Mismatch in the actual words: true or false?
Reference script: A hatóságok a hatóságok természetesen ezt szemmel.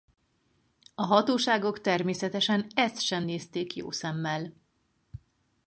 true